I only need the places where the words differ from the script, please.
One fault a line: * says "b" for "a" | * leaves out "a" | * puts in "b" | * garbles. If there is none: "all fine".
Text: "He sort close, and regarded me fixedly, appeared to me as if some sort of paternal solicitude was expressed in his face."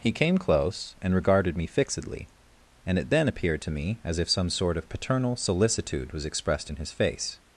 * says "came" for "sort"
* puts in "and it then"